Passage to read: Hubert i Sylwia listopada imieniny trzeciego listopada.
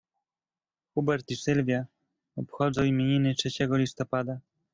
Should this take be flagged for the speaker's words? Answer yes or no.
yes